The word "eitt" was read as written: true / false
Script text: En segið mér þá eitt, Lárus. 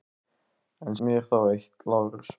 true